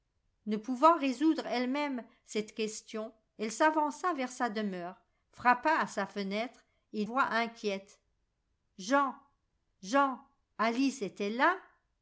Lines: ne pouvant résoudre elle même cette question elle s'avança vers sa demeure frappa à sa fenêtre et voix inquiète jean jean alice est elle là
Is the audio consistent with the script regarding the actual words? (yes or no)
yes